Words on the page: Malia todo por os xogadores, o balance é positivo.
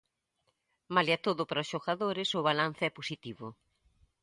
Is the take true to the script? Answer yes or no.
no